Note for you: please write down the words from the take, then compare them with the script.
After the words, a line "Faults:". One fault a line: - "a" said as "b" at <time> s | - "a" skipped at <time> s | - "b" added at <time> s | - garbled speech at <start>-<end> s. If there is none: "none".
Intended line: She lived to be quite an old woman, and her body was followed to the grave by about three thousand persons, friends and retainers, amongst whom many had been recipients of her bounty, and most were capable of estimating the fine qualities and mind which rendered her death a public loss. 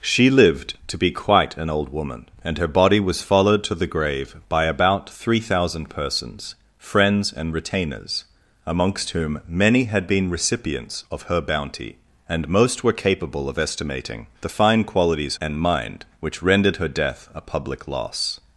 She lived to be quite an old woman, and her body was followed to the grave by about three thousand persons, friends and retainers, amongst whom many had been recipients of her bounty, and most were capable of estimating the fine qualities and mind which rendered her death a public loss.
Faults:
none